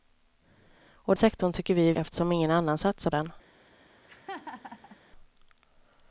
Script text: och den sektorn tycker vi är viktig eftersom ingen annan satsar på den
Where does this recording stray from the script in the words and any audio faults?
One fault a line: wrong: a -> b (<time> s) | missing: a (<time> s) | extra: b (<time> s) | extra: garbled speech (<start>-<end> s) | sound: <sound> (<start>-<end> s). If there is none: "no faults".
missing: den (1.1 s)
missing: viktig (1.9 s)
missing: på (3.1 s)
sound: laugh (4.1-5.0 s)